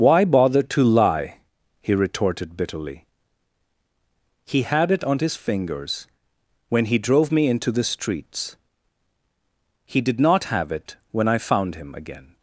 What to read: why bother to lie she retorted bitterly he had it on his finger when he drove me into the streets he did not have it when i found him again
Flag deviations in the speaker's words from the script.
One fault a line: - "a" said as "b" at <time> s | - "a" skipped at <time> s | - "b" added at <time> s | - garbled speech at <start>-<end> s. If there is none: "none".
- "she" said as "he" at 1.8 s
- "finger" said as "fingers" at 5.3 s